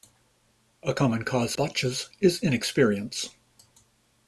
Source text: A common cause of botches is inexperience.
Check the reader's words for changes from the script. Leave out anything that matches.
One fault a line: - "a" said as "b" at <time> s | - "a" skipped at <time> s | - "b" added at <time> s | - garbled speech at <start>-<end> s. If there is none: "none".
- "of" skipped at 1.6 s